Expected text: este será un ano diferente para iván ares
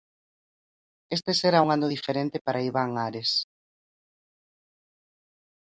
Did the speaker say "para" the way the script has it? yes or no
yes